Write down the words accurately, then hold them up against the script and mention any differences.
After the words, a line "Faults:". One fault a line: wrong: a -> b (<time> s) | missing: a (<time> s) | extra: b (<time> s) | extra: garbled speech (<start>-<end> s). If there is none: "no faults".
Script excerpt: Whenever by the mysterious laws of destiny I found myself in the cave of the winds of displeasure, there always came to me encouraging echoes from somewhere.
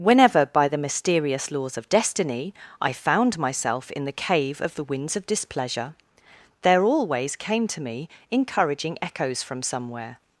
Whenever by the mysterious laws of destiny I found myself in the cave of the winds of displeasure, there always came to me encouraging echoes from somewhere.
Faults:
no faults